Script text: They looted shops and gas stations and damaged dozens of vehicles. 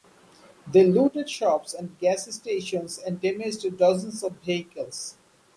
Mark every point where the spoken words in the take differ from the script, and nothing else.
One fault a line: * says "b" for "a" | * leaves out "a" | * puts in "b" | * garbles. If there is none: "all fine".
all fine